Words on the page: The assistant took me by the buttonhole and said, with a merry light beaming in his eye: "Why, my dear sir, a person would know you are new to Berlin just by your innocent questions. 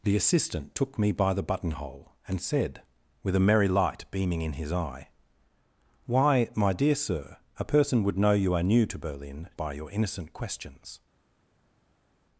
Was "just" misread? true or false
true